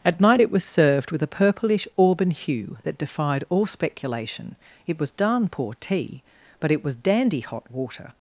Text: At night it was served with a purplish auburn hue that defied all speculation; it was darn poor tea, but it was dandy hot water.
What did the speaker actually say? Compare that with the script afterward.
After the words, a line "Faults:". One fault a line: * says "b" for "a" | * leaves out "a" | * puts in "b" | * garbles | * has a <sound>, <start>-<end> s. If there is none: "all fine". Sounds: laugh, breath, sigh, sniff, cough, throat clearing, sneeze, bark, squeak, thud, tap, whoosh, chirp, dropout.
At night it was served with a purplish auburn hue that defied all speculation; it was darn poor tea, but it was dandy hot water.
Faults:
all fine